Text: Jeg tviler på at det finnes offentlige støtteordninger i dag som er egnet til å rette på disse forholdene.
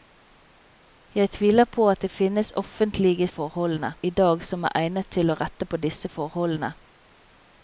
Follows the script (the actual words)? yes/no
no